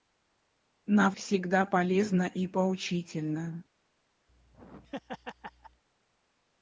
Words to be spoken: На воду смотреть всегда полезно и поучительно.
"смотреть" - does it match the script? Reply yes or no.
no